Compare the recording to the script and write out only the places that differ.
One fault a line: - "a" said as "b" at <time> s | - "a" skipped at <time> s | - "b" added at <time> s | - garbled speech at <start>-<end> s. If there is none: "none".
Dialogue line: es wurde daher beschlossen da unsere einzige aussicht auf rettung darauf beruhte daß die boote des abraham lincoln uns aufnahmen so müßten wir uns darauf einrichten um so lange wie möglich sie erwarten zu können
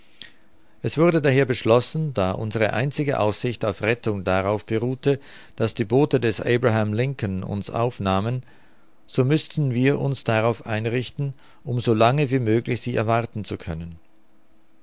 none